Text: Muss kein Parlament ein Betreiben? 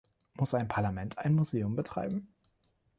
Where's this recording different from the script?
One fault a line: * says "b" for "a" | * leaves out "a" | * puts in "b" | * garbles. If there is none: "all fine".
* says "ein" for "kein"
* puts in "Museum"